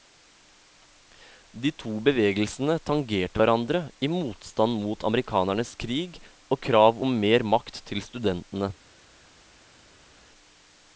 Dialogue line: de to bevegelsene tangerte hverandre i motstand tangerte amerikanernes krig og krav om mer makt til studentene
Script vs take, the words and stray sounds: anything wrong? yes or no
yes